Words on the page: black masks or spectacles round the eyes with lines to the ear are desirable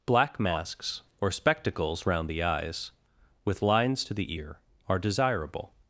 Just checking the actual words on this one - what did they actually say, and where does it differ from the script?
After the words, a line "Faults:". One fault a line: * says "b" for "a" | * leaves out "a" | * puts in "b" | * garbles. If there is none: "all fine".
black masks or spectacles round the eyes with lines to the ear are desirable
Faults:
all fine